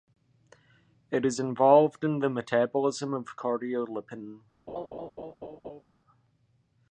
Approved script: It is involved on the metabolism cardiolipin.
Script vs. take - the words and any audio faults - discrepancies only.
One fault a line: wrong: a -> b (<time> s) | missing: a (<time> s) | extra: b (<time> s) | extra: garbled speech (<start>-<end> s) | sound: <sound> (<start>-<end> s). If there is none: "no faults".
wrong: on -> in (2.0 s)
extra: of (3.1 s)
sound: laugh (4.7-5.8 s)